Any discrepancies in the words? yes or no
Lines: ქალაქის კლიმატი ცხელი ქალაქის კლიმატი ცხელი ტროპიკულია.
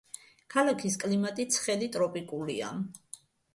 yes